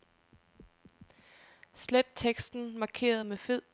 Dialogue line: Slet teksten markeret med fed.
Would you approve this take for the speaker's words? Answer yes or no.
yes